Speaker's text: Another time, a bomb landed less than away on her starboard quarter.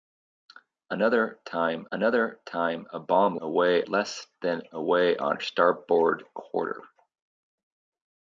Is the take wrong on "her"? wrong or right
wrong